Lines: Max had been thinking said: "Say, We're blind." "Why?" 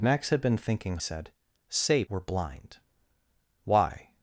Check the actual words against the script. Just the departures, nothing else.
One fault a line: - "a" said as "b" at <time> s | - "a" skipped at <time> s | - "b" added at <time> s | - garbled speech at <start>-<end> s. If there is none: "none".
none